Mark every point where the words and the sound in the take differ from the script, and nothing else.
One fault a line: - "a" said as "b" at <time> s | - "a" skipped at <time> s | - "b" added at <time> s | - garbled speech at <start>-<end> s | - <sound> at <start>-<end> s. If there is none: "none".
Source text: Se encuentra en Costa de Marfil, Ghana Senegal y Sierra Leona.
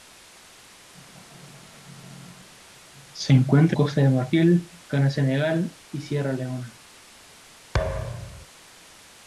- "en" skipped at 3.8 s
- thud at 7.7-8.5 s